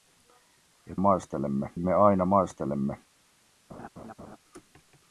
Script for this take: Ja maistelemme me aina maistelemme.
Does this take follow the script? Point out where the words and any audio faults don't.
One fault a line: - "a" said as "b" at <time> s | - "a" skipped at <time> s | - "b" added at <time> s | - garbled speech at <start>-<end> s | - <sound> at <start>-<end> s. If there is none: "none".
- laugh at 3.7-4.4 s